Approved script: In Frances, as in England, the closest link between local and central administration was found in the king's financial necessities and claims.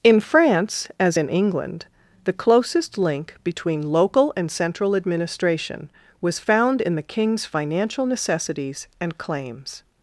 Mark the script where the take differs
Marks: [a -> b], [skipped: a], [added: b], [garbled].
In [Frances, -> France] as in England, the closest link between local and central administration was found in the king's financial necessities and claims.